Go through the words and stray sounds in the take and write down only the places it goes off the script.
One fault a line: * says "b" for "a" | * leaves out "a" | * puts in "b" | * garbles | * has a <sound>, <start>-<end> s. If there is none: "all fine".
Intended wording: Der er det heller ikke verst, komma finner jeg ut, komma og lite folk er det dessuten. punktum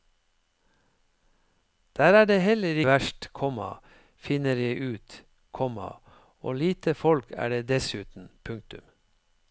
* leaves out "ikke"